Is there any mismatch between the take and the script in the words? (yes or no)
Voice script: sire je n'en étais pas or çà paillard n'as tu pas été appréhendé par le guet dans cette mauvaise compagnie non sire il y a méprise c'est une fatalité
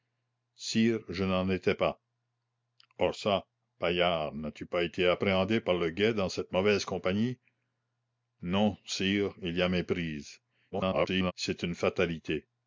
yes